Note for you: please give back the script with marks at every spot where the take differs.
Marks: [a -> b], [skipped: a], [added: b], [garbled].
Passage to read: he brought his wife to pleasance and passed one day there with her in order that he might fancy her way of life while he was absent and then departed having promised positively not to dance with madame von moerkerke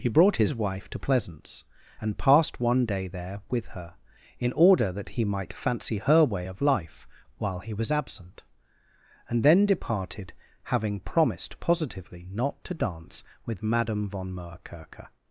he brought his wife to pleasance and passed one day there with her in order that he might fancy her way of life while he was absent and then departed having promised positively not to dance with madame von moerkerke